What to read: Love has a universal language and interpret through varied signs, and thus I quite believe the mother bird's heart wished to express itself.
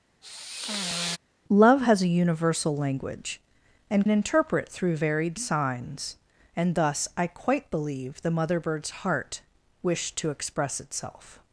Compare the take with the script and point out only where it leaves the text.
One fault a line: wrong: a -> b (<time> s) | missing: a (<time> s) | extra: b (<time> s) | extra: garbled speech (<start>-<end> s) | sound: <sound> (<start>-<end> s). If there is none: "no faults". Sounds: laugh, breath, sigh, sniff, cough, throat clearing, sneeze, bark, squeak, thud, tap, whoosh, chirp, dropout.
sound: sigh (0.2-1.2 s)